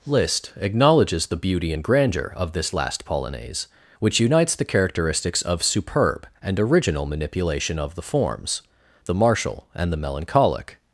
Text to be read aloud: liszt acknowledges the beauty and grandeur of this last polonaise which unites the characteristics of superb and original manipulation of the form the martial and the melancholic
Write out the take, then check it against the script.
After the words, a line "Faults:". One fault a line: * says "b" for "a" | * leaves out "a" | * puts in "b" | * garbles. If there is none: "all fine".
liszt acknowledges the beauty and grandeur of this last polonaise which unites the characteristics of superb and original manipulation of the forms the martial and the melancholic
Faults:
* says "forms" for "form"